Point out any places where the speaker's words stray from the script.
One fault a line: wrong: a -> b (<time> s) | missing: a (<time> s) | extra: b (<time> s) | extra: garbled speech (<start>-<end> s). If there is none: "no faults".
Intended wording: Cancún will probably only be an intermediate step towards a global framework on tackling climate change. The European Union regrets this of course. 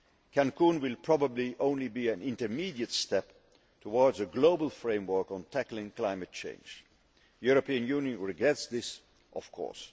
no faults